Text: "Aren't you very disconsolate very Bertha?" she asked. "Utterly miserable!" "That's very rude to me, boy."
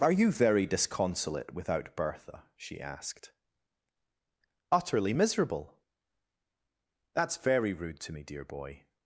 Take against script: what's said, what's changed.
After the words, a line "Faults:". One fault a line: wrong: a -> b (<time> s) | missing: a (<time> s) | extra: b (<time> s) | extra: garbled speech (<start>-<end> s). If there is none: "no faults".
"Are you very disconsolate without Bertha?" she asked. "Utterly miserable!" "That's very rude to me, dear boy."
Faults:
wrong: Aren't -> Are (0.0 s)
wrong: very -> without (1.5 s)
extra: dear (8.2 s)